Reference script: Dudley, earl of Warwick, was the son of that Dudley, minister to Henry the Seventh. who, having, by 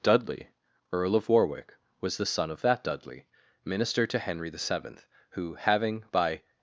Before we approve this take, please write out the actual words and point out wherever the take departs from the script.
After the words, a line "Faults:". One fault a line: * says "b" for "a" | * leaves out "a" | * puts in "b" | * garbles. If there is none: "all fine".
Dudley, earl of Warwick, was the son of that Dudley, minister to Henry the Seventh. who, having, by
Faults:
all fine